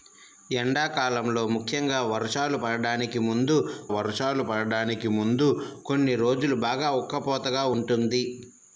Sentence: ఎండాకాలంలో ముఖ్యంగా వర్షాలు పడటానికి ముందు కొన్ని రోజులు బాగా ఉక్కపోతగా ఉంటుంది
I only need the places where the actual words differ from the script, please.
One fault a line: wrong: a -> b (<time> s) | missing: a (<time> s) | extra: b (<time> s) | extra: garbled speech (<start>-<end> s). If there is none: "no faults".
extra: వర్షాలు పడటానికి ముందు (4.0 s)